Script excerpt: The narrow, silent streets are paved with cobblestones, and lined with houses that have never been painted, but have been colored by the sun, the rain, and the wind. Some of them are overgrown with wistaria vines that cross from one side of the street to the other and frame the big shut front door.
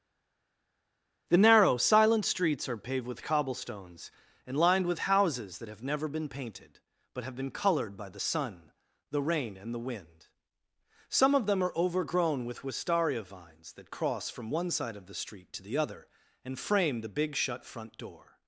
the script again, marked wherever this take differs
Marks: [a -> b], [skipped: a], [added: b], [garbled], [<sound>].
The narrow, silent streets are paved with cobblestones, and lined with houses that have never been painted, but have been colored by the sun, the rain, and the wind. Some of them are overgrown with wistaria vines that cross from one side of the street to the other and frame the big shut front door.